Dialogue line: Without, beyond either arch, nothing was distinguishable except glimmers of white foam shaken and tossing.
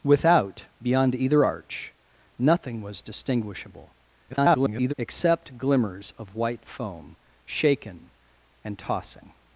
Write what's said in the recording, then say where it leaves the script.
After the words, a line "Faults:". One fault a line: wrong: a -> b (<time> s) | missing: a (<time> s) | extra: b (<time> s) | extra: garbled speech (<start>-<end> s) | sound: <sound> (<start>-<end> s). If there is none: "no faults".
Without, beyond either arch, nothing was distinguishable [garbled] except glimmers of white foam shaken and tossing.
Faults:
extra: garbled speech (4.3-4.9 s)